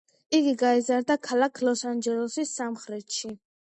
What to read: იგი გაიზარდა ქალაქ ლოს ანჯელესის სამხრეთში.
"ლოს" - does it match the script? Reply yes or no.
yes